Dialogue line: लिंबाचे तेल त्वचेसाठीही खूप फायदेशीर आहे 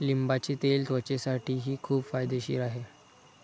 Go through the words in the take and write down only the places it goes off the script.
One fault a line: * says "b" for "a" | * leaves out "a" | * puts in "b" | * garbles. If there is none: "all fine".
all fine